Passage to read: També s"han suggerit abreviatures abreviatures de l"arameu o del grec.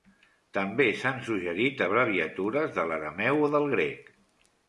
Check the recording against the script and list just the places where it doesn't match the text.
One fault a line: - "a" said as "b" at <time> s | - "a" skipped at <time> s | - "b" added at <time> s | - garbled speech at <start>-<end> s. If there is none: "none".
- "abreviatures" skipped at 2.7 s